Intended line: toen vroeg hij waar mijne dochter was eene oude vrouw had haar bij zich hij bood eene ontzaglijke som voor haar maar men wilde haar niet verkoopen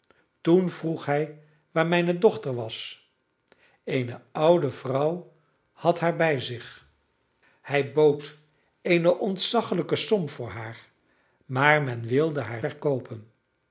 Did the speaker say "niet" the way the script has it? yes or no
no